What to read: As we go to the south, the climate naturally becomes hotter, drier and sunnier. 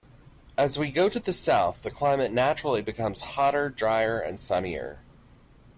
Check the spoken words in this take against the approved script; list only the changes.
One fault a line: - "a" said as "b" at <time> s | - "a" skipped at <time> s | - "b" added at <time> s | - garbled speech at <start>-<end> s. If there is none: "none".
none